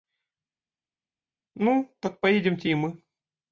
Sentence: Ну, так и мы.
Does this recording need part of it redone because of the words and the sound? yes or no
yes